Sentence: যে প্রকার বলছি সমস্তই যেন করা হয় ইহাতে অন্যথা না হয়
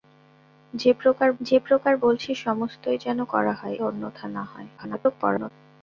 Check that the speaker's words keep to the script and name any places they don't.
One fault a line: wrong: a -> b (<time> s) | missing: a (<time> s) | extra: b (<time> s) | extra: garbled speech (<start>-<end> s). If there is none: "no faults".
extra: যে প্রকার (1.4 s)
missing: ইহাতে (3.8 s)
extra: garbled speech (4.8-5.5 s)